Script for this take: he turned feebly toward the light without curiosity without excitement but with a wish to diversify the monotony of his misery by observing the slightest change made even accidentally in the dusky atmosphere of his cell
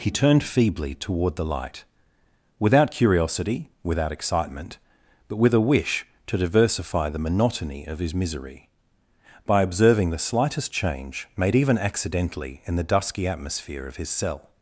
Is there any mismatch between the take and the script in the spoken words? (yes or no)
no